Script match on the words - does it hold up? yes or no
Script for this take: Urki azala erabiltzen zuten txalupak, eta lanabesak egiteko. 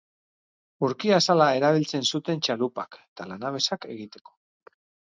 yes